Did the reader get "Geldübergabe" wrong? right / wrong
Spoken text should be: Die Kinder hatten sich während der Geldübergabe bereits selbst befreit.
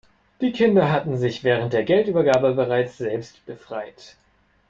right